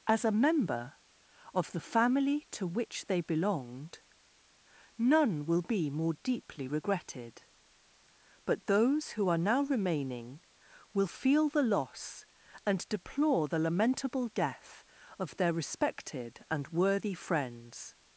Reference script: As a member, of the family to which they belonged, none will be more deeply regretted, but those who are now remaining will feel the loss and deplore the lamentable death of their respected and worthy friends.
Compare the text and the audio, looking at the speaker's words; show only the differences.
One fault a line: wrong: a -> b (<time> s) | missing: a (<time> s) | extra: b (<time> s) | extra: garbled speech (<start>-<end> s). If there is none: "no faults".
no faults